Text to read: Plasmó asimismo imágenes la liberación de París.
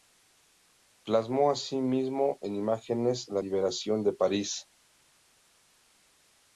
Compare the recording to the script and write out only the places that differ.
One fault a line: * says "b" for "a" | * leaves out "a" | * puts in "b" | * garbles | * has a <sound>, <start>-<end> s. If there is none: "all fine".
* puts in "en"